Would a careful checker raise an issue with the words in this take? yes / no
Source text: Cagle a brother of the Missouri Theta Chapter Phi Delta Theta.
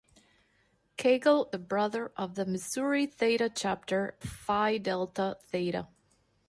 no